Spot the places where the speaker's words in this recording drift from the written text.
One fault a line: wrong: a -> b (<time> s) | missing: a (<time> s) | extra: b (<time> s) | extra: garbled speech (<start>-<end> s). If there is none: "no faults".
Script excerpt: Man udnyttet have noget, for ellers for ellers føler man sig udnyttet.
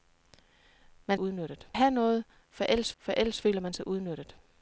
no faults